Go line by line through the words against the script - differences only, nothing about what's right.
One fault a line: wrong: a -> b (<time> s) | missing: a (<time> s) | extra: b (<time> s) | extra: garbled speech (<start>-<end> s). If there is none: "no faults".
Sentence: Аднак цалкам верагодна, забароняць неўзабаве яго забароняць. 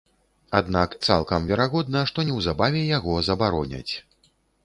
wrong: забароняць -> што (2.1 s)